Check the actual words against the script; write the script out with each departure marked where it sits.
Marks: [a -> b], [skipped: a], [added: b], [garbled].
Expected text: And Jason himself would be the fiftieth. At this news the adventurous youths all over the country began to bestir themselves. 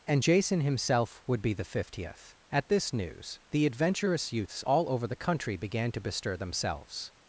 And Jason himself would be the fiftieth. At this news the adventurous youths all over the country began to bestir themselves.